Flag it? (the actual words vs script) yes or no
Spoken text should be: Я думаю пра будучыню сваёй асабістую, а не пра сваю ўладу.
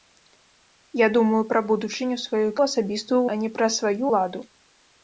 no